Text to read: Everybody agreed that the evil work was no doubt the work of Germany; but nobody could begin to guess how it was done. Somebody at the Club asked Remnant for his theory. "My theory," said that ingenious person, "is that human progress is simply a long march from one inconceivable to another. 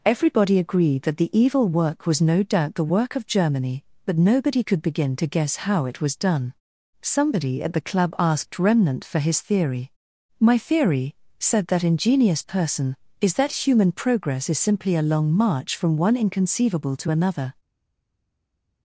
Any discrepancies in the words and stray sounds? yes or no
no